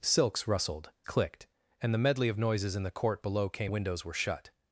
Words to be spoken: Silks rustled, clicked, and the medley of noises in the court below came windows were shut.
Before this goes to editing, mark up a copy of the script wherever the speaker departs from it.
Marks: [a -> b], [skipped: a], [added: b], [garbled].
Silks rustled, clicked, and the medley of noises in the court below came windows were shut.